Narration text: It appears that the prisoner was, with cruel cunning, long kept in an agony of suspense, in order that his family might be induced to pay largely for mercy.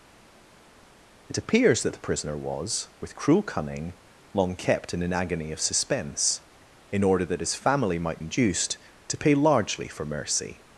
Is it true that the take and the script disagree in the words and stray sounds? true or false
true